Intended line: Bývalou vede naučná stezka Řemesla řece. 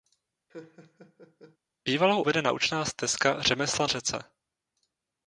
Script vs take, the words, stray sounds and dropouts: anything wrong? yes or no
yes